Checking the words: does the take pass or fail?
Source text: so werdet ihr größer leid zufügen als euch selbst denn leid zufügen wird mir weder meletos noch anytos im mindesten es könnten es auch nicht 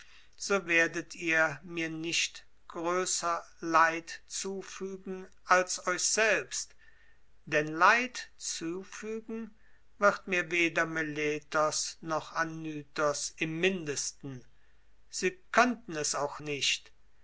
fail